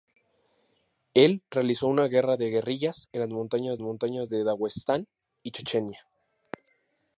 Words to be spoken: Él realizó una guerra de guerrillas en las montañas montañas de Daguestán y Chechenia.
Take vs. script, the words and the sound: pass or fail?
pass